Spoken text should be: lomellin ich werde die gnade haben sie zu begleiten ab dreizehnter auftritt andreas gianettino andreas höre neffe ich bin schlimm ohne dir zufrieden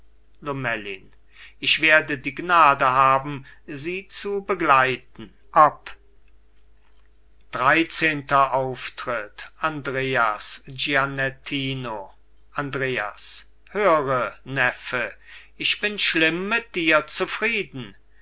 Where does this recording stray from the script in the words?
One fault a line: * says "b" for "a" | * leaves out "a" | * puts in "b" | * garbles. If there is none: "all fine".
* says "mit" for "ohne"